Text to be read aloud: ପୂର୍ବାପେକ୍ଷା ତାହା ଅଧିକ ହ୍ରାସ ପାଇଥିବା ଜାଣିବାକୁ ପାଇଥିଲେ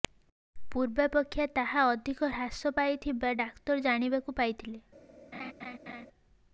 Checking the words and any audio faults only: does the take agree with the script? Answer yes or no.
no